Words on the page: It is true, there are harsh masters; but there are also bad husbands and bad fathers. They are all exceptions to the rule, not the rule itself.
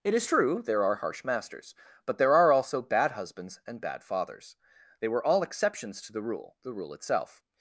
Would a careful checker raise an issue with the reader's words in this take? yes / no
yes